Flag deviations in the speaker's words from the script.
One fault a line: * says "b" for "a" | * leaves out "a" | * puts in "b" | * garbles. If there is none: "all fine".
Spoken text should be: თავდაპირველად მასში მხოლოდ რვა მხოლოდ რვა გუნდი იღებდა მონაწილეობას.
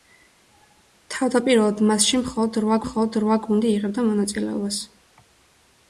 all fine